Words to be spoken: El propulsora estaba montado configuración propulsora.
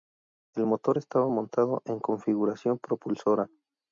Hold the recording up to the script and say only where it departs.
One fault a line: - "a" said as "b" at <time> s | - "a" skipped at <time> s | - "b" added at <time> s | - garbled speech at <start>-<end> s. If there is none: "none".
- "propulsora" said as "motor" at 0.6 s
- "en" added at 1.8 s